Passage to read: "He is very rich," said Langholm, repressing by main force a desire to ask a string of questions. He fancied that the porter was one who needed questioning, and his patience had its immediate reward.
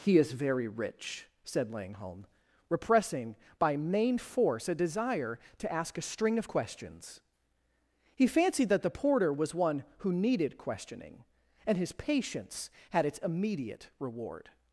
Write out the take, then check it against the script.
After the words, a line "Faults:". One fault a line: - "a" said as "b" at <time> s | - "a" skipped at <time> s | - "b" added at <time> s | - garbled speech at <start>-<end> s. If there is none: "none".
"He is very rich," said Langholm, repressing by main force a desire to ask a string of questions. He fancied that the porter was one who needed questioning, and his patience had its immediate reward.
Faults:
none